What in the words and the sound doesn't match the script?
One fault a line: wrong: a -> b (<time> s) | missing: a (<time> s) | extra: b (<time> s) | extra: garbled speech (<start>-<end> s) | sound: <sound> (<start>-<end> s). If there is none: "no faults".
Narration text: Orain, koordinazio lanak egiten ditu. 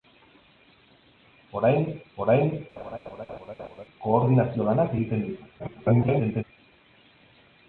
extra: orain (2.2 s)
sound: laugh (2.8-3.8 s)
extra: garbled speech (5.6-6.4 s)